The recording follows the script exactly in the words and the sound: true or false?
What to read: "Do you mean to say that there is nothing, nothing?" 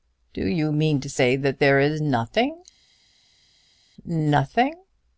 true